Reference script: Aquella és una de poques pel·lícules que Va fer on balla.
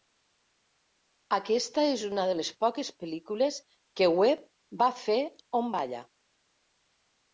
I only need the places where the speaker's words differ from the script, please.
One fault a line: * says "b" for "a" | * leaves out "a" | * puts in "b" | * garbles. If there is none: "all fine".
* says "Aquesta" for "Aquella"
* puts in "les"
* puts in "Webb"